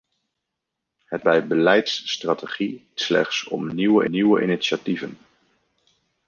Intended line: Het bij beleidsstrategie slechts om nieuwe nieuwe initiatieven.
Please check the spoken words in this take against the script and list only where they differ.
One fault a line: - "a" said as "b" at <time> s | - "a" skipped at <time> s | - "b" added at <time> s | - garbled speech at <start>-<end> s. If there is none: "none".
none